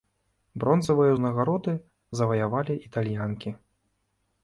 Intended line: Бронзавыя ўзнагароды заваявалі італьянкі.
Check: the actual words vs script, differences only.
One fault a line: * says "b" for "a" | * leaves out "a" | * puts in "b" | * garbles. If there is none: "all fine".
all fine